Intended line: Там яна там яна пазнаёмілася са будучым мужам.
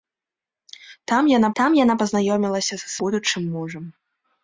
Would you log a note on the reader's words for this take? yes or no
no